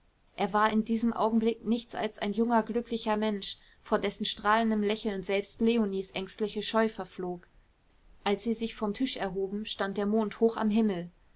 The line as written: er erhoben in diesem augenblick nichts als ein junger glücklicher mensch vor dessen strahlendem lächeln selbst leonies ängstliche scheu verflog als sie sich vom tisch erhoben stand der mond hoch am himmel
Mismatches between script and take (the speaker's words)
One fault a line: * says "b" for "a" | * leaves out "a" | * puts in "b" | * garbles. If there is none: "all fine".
* says "war" for "erhoben"